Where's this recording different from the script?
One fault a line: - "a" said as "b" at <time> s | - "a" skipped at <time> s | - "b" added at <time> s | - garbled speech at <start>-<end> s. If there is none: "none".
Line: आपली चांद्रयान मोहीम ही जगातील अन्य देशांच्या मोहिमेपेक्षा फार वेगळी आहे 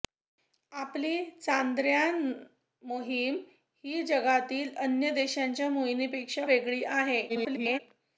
- "फार" skipped at 6.5 s
- garbled speech at 7.3-7.8 s